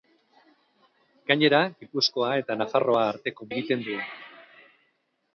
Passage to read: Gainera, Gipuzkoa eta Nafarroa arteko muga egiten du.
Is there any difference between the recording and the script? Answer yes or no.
yes